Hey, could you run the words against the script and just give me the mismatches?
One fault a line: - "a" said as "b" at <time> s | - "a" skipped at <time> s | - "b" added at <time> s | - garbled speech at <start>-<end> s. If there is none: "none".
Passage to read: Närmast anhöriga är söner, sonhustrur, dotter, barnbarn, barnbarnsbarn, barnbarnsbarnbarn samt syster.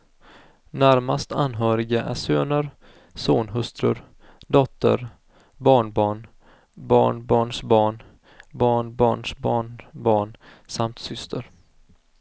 none